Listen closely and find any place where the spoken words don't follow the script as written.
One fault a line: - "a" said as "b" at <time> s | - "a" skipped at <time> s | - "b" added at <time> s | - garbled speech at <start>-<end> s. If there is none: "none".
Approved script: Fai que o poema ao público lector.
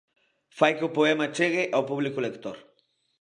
- "chegue" added at 1.4 s